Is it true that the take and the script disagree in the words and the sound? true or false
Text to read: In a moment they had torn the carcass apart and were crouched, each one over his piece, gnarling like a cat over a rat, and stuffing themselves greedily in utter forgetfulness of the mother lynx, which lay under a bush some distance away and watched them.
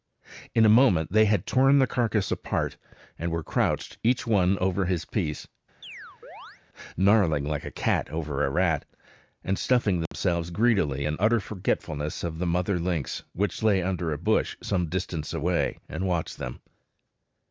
true